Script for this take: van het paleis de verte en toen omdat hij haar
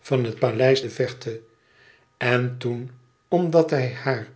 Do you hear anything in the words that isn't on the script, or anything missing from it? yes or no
no